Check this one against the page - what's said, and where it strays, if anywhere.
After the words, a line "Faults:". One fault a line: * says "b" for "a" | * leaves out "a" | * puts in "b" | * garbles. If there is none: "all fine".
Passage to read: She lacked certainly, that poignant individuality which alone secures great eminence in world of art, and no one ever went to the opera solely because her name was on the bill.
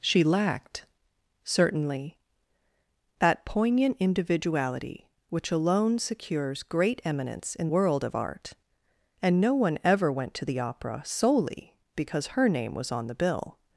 She lacked certainly, that poignant individuality which alone secures great eminence in world of art, and no one ever went to the opera solely because her name was on the bill.
Faults:
all fine